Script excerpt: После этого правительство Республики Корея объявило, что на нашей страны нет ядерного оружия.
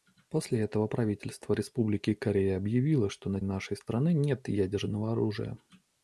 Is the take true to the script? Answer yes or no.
yes